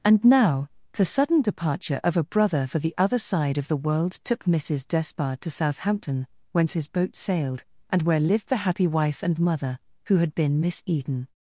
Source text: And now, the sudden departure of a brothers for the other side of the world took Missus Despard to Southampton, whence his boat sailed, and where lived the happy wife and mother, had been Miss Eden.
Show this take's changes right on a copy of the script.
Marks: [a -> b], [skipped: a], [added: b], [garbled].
And now, the sudden departure of a [brothers -> brother] for the other side of the world took Missus Despard to Southampton, whence his boat sailed, and where lived the happy wife and mother, [added: who] had been Miss Eden.